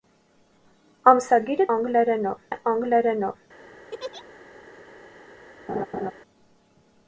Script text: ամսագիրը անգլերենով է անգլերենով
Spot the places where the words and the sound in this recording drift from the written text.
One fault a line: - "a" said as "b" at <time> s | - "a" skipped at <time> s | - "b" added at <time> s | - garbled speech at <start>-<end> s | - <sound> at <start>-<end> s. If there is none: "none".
- laugh at 3.9-4.2 s
- laugh at 5.7-6.1 s